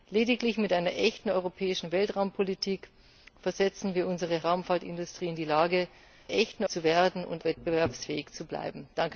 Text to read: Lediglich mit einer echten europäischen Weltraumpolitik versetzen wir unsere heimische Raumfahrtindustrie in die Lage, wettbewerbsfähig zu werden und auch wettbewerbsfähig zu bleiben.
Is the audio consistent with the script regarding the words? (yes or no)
no